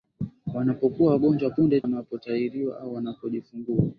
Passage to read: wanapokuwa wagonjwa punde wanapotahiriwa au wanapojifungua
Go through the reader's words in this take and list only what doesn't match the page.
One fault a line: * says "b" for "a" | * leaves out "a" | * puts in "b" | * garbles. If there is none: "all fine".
all fine